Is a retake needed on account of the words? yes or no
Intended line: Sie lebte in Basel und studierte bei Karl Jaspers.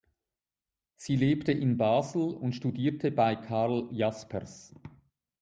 no